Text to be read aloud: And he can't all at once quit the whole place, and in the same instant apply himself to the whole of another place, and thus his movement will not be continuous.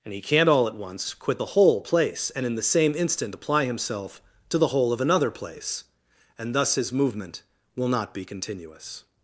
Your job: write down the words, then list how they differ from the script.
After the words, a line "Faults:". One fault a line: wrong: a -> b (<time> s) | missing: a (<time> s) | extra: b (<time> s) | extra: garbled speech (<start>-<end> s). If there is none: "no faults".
And he can't all at once quit the whole place, and in the same instant apply himself to the whole of another place, and thus his movement will not be continuous.
Faults:
no faults